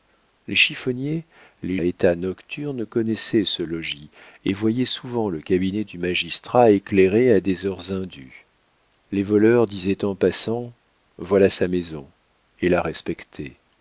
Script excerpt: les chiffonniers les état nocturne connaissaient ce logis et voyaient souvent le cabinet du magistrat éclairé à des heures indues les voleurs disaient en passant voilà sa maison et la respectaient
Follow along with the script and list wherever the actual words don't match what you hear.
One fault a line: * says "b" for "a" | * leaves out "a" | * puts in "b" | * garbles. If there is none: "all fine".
all fine